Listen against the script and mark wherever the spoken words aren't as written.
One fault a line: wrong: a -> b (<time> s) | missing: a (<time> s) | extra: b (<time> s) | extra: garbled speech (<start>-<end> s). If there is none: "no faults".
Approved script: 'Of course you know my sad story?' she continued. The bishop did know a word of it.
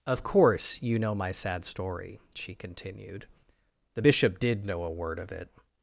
no faults